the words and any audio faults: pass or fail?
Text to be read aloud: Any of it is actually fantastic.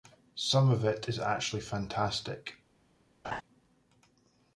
fail